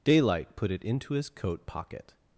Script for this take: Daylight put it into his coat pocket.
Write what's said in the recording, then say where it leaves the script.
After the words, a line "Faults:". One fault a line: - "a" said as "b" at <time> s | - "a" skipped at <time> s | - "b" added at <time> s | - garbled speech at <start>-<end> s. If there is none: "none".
Daylight put it into his coat pocket.
Faults:
none